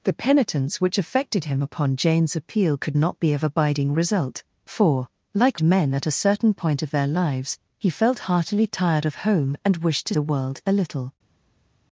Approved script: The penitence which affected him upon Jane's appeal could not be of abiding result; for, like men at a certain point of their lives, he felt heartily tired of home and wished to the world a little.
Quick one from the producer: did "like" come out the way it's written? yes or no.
yes